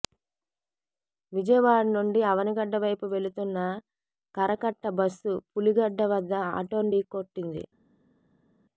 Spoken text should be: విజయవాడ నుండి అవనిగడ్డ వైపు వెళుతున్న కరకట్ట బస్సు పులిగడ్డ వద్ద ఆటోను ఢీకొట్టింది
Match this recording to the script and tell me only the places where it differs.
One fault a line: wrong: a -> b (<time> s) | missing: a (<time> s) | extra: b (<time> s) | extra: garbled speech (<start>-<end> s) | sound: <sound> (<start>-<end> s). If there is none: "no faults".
no faults